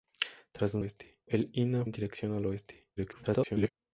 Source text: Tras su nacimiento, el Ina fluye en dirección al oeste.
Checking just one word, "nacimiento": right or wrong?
wrong